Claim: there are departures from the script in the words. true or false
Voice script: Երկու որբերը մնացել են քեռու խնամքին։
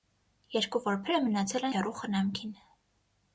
true